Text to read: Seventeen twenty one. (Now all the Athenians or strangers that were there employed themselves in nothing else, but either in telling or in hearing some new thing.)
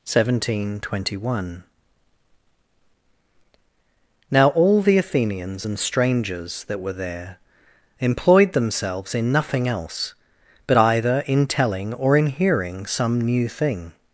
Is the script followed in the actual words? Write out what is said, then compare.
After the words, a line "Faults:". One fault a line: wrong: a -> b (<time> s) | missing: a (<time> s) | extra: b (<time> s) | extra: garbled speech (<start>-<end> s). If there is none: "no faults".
Seventeen twenty one. (Now all the Athenians and strangers that were there employed themselves in nothing else, but either in telling or in hearing some new thing.)
Faults:
wrong: or -> and (5.6 s)